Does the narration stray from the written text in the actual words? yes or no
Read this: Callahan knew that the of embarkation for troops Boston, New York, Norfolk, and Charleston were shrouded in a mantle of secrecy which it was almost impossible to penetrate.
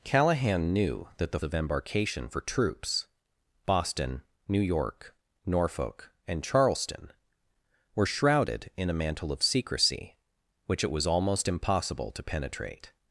no